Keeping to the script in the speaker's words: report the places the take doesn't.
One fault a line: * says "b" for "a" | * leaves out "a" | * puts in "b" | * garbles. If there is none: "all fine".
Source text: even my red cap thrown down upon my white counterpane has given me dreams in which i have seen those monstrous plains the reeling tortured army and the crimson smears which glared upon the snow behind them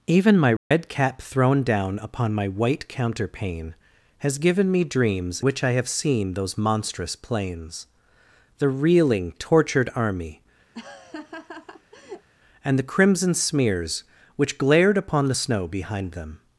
* leaves out "in"